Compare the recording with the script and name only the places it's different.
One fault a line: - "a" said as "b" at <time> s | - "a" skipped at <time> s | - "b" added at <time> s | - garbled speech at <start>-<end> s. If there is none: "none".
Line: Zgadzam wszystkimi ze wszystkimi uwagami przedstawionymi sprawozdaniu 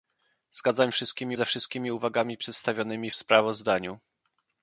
none